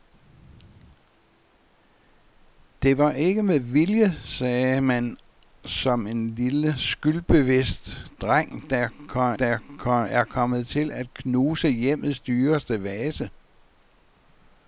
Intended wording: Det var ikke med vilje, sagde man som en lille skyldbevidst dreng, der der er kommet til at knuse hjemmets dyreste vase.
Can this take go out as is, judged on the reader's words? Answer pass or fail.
pass